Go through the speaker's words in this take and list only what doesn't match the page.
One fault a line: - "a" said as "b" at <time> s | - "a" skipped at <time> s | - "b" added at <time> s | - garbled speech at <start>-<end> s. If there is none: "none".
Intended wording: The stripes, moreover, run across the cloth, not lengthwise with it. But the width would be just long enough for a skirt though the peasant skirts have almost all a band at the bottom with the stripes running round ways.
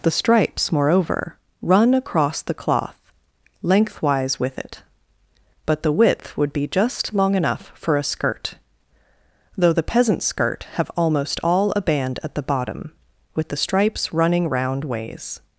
- "not" skipped at 3.0 s
- "skirts" said as "skirt" at 10.2 s